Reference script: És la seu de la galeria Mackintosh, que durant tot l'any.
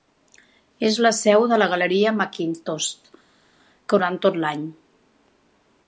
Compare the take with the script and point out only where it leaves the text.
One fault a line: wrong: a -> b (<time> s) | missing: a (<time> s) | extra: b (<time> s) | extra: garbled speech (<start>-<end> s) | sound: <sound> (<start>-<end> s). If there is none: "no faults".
no faults